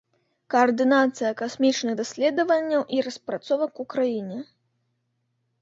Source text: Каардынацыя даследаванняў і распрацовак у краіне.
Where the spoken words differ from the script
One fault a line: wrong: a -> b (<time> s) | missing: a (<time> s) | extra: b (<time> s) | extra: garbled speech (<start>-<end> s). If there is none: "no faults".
extra: касмічных (1.4 s)